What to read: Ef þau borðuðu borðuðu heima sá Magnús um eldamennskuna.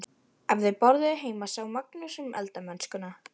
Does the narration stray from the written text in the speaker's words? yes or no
yes